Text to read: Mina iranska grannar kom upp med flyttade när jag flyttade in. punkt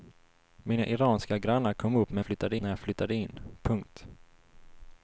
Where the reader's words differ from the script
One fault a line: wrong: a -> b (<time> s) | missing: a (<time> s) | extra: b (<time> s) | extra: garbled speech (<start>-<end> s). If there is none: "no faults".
no faults